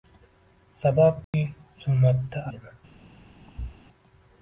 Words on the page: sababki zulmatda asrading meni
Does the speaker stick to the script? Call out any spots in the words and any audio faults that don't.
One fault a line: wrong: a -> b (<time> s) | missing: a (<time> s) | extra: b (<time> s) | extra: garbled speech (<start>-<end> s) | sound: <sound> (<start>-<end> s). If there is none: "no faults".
sound: dropout (1.2-1.3 s)
missing: asrading (2.4 s)
sound: thud (3.5-3.8 s)